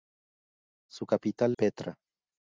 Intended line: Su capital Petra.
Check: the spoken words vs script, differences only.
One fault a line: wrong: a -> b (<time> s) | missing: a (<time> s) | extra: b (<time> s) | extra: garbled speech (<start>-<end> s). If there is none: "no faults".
no faults